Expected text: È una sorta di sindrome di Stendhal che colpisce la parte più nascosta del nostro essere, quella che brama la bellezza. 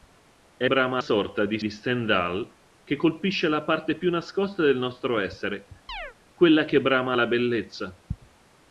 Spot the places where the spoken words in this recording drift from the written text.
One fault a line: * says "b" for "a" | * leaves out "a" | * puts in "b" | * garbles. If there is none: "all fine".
* says "brama" for "una"
* leaves out "sindrome"